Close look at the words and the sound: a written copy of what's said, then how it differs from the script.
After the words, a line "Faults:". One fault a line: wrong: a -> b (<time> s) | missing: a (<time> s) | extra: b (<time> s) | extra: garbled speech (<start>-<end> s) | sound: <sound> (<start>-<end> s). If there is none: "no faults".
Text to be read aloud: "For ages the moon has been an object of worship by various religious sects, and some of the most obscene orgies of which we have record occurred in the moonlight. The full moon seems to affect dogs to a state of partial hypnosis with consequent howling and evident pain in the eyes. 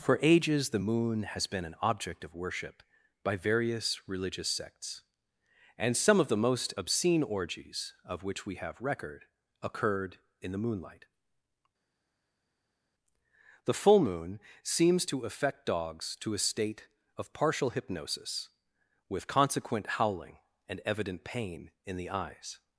"For ages the moon has been an object of worship by various religious sects, and some of the most obscene orgies of which we have record occurred in the moonlight. The full moon seems to affect dogs to a state of partial hypnosis with consequent howling and evident pain in the eyes.
Faults:
no faults